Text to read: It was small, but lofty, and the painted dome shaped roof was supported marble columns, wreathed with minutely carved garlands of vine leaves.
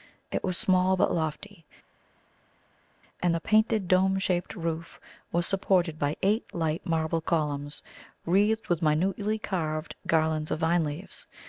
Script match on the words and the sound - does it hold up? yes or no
no